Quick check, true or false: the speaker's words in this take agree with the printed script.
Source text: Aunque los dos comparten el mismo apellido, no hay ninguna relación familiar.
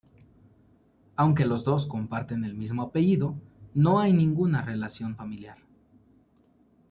true